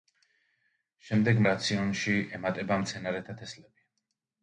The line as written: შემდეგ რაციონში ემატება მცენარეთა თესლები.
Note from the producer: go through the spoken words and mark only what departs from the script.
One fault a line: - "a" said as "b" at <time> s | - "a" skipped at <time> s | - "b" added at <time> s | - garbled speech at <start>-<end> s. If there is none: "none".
none